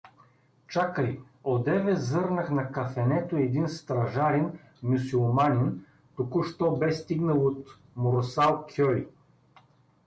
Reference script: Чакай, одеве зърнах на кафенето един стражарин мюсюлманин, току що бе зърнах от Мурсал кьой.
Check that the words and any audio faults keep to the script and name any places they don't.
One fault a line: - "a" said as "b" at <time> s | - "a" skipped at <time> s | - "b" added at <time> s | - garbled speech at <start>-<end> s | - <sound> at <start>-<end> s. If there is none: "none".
- "зърнах" said as "стигнал" at 6.9 s